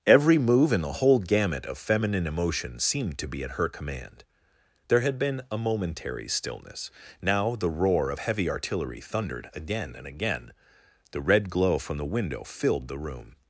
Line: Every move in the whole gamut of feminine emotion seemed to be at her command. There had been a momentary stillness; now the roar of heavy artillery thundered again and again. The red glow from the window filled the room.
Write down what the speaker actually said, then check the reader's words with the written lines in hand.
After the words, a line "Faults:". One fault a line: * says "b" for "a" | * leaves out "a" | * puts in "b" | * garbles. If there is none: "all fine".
Every move in the whole gamut of feminine emotion seemed to be at her command. There had been a momentary stillness; now the roar of heavy artillery thundered again and again. The red glow from the window filled the room.
Faults:
all fine